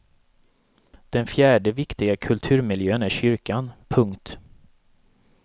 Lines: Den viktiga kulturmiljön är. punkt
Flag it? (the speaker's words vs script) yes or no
yes